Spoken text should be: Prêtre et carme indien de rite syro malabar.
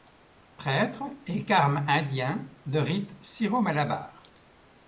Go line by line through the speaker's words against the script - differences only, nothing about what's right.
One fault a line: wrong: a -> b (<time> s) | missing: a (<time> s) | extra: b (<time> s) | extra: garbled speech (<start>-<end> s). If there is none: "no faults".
no faults